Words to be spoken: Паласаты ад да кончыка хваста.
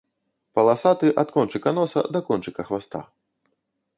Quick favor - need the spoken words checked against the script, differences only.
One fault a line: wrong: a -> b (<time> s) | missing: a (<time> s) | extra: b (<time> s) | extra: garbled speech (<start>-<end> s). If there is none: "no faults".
extra: кончыка носа (1.4 s)